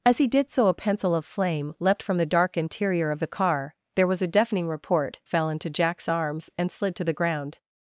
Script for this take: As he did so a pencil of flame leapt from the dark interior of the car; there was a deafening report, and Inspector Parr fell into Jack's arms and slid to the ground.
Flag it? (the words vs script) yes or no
yes